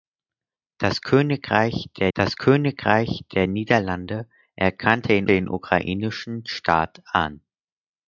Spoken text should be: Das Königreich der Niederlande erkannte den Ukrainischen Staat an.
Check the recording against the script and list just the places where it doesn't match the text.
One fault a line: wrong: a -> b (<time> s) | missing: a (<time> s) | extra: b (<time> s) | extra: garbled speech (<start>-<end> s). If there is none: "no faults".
extra: das Königreich der (2.1 s)
extra: den (5.3 s)